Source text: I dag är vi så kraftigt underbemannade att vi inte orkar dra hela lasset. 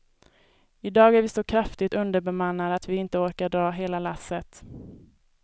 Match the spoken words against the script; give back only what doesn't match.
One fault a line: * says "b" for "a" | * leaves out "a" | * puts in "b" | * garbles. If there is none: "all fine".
all fine